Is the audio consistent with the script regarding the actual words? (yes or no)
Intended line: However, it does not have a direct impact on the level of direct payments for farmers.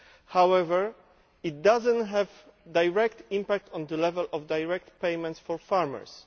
yes